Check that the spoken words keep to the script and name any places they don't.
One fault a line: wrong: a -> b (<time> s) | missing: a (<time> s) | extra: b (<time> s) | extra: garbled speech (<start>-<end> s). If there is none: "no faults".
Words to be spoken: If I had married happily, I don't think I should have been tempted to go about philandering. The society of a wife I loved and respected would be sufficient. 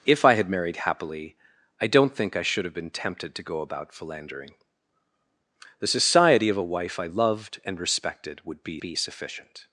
extra: be (8.8 s)